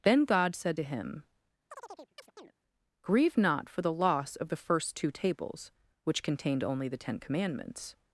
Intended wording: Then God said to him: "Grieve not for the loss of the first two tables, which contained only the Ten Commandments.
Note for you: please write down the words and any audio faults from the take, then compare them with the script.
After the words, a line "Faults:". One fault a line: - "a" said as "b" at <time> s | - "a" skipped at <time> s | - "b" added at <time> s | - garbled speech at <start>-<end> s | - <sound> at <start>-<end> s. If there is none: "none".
Then God said to him: "Grieve not for the loss of the first two tables, which contained only the Ten Commandments.
Faults:
- chirp at 1.7-2.5 s